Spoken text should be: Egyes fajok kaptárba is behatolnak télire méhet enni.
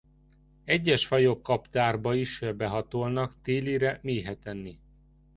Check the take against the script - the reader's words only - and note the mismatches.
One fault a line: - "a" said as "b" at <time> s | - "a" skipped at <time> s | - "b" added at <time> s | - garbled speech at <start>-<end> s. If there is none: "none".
none